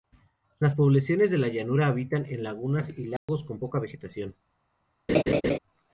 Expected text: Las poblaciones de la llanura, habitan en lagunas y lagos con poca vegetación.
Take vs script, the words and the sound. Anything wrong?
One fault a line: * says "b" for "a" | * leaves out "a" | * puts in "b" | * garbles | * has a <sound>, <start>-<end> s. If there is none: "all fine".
* has a dropout, 3.2-3.3 s
* has a laugh, 5.1-5.6 s